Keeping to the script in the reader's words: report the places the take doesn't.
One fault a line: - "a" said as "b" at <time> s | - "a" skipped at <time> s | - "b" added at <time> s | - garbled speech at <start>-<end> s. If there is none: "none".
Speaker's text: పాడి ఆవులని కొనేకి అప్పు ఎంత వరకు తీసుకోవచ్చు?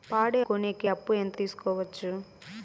- "ఆవులని" skipped at 0.4 s
- "వరకు" skipped at 1.4 s